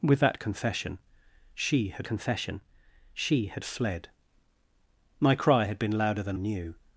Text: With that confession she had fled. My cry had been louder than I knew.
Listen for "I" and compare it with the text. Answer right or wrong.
wrong